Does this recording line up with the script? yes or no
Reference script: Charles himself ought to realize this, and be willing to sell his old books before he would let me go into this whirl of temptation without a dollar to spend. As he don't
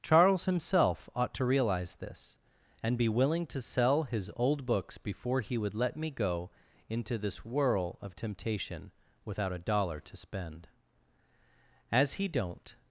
yes